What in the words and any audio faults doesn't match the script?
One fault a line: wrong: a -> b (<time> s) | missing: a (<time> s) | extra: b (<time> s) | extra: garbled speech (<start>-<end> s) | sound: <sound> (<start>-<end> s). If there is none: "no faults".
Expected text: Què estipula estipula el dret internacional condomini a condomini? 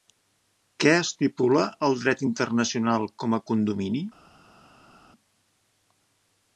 missing: estipula (1.7 s)
wrong: condomini -> com (3.2 s)